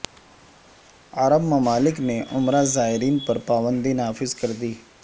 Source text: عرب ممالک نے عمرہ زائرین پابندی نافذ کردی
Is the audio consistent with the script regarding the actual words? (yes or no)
no